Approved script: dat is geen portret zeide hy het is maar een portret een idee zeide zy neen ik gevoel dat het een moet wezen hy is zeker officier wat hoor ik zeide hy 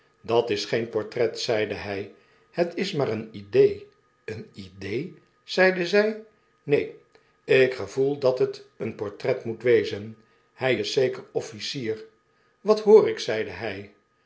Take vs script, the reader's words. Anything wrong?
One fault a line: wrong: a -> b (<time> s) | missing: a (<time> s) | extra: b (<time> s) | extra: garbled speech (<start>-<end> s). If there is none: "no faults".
wrong: portret -> idee (3.3 s)
extra: portret (8.9 s)